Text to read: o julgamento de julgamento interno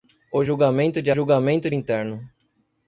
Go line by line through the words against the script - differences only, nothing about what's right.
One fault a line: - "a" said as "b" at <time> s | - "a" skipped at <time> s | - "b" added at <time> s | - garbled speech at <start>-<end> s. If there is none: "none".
none